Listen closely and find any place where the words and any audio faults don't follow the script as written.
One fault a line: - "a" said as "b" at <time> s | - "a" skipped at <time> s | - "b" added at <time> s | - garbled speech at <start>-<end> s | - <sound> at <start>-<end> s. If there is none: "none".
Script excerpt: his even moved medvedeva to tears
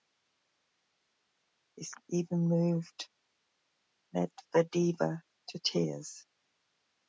none